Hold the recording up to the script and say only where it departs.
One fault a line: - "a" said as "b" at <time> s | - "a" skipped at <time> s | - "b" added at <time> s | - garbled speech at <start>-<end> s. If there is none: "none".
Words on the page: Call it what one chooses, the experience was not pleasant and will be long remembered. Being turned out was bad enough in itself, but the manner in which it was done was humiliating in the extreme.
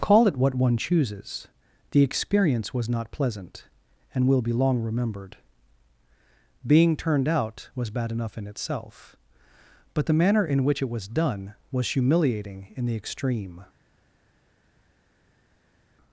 none